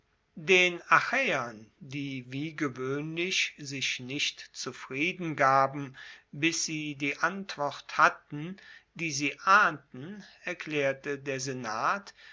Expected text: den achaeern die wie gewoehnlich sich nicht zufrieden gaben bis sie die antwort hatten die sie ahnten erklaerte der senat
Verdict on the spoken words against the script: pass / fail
pass